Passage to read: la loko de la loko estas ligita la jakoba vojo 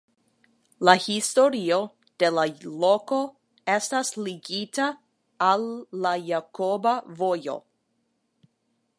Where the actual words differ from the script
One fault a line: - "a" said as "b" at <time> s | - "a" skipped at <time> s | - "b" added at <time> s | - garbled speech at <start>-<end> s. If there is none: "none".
- "loko" said as "historio" at 1.1 s
- "al" added at 5.5 s